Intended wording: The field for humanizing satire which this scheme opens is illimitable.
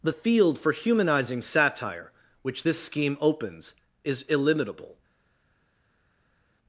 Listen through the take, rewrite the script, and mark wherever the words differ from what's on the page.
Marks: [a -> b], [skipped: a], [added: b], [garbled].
The field for humanizing satire which this scheme opens is illimitable.